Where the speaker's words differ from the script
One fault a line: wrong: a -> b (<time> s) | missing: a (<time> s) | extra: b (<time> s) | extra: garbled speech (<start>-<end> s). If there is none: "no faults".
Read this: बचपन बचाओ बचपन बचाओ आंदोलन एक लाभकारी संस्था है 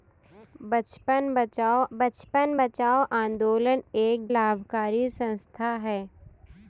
no faults